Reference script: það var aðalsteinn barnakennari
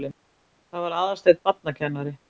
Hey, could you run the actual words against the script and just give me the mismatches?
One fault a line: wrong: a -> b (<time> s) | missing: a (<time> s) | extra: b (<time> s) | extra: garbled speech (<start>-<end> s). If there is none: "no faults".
no faults